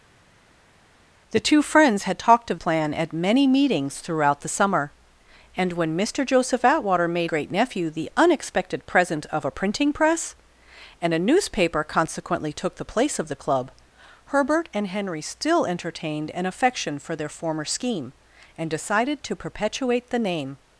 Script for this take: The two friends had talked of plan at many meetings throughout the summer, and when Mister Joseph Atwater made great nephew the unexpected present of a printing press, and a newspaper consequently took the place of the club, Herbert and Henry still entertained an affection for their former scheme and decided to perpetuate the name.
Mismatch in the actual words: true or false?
false